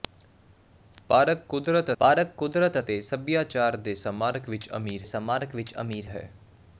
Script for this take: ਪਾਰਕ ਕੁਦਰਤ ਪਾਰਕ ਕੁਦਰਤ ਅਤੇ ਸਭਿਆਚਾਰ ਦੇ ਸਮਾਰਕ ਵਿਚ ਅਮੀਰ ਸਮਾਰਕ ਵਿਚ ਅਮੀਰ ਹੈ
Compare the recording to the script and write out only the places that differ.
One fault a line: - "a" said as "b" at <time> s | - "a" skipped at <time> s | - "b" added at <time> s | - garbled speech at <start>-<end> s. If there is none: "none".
none